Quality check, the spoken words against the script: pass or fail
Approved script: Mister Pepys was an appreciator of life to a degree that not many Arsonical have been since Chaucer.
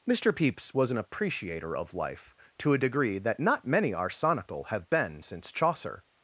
pass